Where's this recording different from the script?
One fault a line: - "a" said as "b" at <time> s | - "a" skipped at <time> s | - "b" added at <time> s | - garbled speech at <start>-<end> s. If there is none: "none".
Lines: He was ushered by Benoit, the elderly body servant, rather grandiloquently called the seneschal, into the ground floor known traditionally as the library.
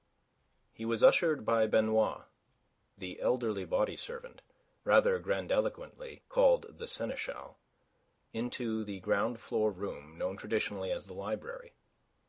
- "room" added at 9.7 s